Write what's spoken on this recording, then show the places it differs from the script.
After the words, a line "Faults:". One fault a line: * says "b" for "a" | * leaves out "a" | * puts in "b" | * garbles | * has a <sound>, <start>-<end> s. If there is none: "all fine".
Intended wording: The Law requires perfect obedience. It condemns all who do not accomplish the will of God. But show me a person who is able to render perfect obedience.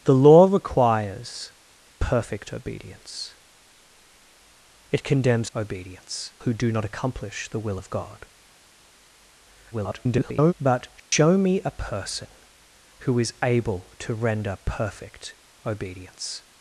The Law requires perfect obedience. It condemns obedience who do not accomplish the will of God. [garbled] But show me a person who is able to render perfect obedience.
Faults:
* says "obedience" for "all"
* garbles
* has a dropout, 11.0-11.1 s